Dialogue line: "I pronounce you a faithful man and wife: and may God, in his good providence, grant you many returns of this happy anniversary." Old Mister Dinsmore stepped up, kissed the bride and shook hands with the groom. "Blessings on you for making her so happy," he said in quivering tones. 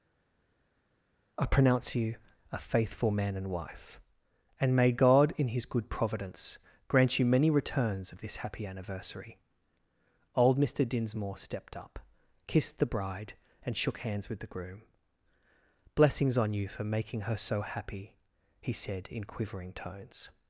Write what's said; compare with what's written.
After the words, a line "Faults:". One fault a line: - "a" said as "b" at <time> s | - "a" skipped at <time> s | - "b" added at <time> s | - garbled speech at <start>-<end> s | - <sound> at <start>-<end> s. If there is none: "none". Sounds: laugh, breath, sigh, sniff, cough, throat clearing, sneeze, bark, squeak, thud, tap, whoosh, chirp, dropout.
"I pronounce you a faithful man and wife: and may God, in his good providence, grant you many returns of this happy anniversary." Old Mister Dinsmore stepped up, kissed the bride and shook hands with the groom. "Blessings on you for making her so happy," he said in quivering tones.
Faults:
none